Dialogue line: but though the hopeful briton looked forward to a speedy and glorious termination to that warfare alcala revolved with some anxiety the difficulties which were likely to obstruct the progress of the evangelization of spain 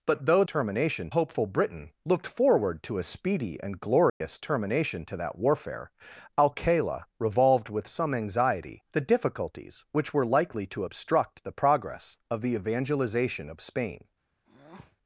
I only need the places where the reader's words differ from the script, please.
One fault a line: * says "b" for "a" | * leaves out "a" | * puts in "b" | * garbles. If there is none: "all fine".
* says "termination" for "the"